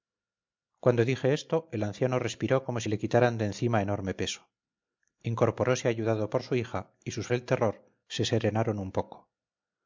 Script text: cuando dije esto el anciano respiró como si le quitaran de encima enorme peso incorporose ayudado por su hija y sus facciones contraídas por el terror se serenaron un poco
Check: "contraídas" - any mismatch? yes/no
yes